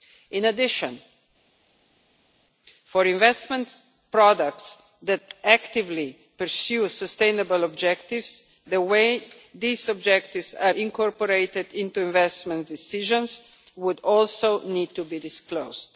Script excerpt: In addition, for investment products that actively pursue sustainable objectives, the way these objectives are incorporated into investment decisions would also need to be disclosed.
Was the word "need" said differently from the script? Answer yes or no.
no